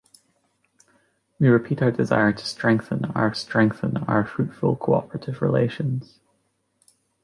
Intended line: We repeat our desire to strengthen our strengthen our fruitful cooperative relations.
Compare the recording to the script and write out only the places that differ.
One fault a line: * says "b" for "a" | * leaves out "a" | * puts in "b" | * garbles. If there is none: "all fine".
all fine